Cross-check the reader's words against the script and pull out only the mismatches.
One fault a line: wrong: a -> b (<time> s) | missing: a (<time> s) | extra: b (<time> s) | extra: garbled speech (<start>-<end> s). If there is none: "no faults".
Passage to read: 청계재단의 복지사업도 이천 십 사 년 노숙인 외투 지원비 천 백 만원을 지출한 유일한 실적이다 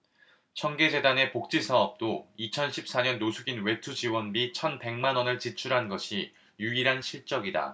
extra: 것이 (5.9 s)